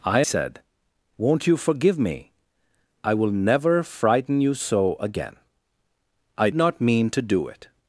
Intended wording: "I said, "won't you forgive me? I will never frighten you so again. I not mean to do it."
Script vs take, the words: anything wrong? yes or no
no